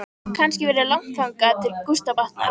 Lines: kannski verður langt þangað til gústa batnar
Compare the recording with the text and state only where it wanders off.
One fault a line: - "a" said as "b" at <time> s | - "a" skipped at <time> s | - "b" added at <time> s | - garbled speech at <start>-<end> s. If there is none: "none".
none